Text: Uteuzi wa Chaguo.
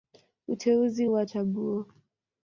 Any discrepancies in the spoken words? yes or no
no